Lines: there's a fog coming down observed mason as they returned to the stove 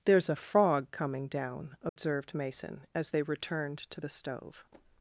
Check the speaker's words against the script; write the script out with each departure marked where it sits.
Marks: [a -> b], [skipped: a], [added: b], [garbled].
there's a [fog -> frog] coming down observed mason as they returned to the stove